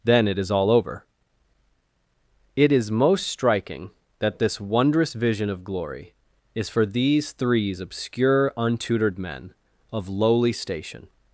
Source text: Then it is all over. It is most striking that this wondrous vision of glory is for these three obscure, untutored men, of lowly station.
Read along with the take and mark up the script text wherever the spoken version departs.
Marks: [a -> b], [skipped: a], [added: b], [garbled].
Then it is all over. It is most striking that this wondrous vision of glory is for these [three -> threes] obscure, untutored men, of lowly station.